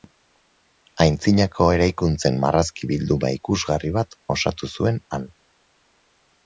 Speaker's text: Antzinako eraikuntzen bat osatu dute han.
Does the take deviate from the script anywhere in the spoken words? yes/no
yes